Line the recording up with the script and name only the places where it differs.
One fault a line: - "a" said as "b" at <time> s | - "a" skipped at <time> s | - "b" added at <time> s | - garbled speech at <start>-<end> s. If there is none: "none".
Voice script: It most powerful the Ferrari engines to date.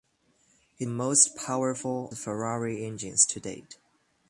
none